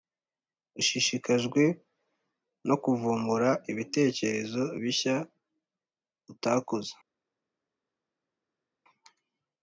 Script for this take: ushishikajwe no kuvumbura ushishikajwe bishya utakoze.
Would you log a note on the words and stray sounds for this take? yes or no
yes